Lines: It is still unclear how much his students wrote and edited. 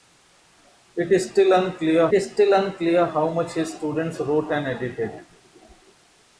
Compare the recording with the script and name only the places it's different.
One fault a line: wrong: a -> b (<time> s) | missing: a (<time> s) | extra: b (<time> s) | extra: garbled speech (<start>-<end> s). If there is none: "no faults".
extra: is still unclear (2.1 s)